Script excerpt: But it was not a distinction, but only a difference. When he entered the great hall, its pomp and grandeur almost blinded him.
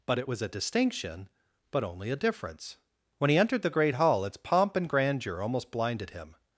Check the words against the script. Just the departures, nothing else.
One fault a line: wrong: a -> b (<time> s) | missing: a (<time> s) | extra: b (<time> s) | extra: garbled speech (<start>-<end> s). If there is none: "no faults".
missing: not (0.4 s)